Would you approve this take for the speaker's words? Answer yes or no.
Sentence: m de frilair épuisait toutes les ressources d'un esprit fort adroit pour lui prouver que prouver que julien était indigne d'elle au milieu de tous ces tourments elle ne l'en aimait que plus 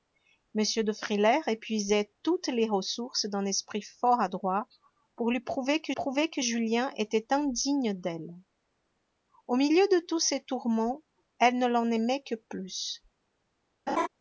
yes